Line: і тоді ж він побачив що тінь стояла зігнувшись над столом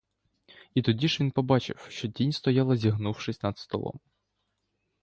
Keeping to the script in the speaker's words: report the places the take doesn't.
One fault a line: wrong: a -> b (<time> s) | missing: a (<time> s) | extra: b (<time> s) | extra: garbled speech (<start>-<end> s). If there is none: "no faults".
no faults